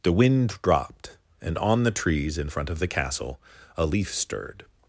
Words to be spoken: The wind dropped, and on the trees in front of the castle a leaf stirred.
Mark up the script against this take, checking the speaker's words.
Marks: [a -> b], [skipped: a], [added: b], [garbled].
The wind dropped, and on the trees in front of the castle a leaf stirred.